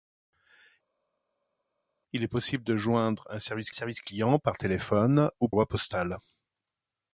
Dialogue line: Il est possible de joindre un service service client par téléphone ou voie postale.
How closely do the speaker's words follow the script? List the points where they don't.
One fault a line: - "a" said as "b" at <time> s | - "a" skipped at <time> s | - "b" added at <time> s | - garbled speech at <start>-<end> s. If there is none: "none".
none